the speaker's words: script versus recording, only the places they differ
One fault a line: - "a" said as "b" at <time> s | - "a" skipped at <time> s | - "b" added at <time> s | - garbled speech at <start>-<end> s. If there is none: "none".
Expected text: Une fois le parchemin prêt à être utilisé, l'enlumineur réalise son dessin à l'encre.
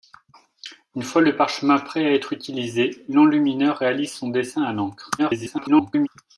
- garbled speech at 5.2-6.1 s